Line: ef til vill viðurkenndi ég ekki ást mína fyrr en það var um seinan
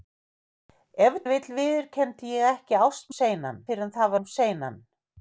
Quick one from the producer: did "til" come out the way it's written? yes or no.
no